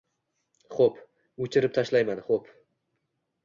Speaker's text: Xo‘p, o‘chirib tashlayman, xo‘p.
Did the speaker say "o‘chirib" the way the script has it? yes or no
yes